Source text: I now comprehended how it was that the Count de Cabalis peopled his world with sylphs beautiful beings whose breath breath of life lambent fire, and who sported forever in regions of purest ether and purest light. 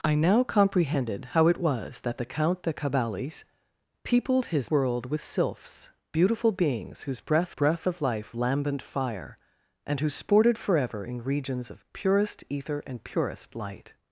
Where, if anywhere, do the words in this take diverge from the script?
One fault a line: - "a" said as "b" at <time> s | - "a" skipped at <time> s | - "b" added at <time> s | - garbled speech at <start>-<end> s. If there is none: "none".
none